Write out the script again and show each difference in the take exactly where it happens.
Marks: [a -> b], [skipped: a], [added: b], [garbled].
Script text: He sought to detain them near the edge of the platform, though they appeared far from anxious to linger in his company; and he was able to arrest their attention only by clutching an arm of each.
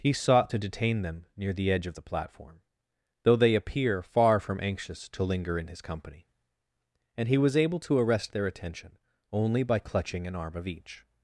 He sought to detain them near the edge of the platform, though they [appeared -> appear] far from anxious to linger in his company; and he was able to arrest their attention only by clutching an arm of each.